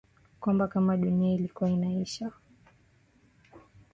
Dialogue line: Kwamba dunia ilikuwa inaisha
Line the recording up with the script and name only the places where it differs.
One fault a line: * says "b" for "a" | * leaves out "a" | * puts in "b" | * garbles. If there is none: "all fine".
* puts in "kama"